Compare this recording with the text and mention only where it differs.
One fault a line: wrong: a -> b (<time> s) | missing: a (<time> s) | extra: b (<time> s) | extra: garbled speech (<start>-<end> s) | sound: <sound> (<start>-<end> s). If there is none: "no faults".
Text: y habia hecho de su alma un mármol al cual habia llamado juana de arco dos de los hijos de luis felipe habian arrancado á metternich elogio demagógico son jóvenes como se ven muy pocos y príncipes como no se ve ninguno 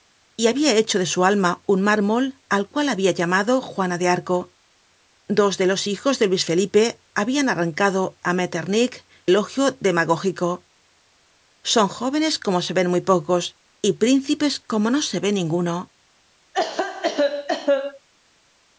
sound: cough (16.5-18.1 s)